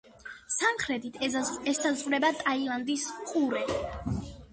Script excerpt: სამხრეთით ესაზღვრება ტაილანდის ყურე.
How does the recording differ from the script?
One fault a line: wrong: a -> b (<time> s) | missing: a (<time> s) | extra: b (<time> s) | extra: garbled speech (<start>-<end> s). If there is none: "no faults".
no faults